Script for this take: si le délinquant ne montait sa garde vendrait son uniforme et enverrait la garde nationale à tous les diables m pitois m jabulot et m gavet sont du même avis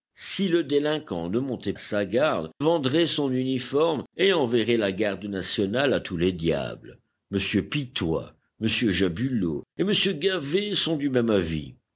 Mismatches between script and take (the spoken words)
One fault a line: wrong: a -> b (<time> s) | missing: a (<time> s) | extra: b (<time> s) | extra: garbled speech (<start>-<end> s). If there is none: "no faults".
no faults